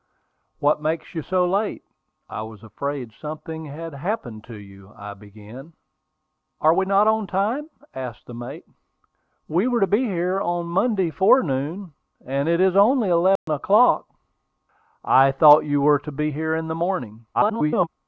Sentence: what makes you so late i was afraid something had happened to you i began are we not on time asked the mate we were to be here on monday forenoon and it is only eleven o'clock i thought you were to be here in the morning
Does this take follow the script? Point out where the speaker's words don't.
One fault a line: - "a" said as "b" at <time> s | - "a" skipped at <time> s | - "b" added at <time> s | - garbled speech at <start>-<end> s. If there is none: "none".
- garbled speech at 17.3-17.9 s